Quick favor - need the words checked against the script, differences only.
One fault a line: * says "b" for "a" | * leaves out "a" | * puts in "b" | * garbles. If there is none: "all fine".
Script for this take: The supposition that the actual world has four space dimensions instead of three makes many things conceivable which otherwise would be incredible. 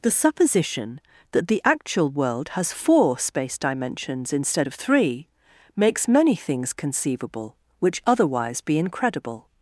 * leaves out "would"